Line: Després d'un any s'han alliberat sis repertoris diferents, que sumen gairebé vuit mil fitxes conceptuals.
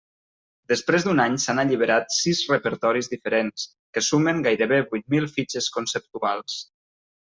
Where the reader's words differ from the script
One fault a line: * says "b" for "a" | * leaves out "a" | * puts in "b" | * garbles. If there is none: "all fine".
all fine